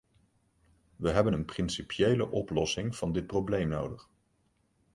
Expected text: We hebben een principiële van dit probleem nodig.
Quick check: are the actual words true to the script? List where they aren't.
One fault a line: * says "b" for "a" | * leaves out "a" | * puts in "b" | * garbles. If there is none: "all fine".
* puts in "oplossing"